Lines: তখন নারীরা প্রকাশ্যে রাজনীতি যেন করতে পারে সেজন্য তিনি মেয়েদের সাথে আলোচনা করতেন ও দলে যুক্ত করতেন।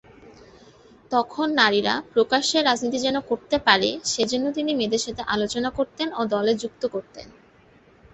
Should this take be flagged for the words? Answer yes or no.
no